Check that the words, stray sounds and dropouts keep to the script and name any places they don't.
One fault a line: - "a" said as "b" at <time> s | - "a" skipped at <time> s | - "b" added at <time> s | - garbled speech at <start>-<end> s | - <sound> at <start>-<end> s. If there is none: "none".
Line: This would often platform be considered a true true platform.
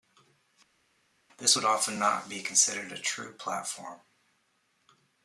- "platform" said as "not" at 2.0 s
- "true" skipped at 3.3 s